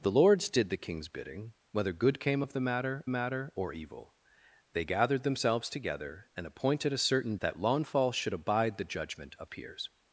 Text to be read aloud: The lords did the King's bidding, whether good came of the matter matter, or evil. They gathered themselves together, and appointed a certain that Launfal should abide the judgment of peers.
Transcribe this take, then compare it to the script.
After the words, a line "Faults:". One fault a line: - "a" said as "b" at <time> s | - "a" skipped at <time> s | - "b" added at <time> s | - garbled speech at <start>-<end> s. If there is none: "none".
The lords did the King's bidding, whether good came of the matter matter, or evil. They gathered themselves together, and appointed a certain that Launfal should abide the judgment of peers.
Faults:
none